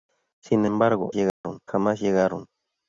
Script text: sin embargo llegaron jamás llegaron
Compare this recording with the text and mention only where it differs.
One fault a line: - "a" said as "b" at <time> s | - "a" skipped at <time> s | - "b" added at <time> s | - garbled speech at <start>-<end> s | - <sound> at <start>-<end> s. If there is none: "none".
- dropout at 1.3-1.4 s